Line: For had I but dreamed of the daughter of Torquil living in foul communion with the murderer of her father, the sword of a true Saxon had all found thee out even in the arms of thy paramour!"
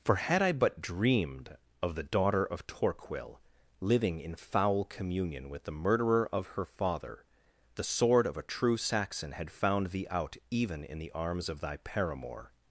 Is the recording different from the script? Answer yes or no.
yes